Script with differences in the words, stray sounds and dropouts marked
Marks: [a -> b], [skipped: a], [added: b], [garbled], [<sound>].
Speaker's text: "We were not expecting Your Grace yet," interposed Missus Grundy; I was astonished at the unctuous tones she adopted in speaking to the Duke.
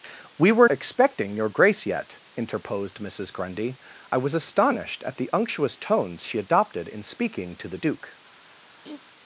"We were [skipped: not] expecting Your Grace yet," interposed Missus Grundy; I was astonished at the unctuous tones she adopted in speaking to the Duke. [throat clearing]